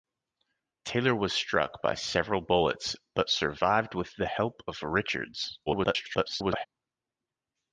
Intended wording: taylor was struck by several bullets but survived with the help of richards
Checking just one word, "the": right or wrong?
right